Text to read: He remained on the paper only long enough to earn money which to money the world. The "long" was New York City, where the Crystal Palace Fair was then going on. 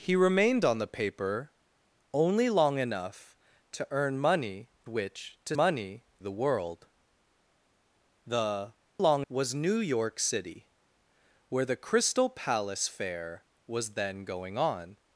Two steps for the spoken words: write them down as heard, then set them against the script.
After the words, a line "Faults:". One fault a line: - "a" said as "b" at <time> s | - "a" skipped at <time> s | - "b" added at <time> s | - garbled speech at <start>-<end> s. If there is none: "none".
He remained on the paper only long enough to earn money which to money the world. The "long" was New York City, where the Crystal Palace Fair was then going on.
Faults:
none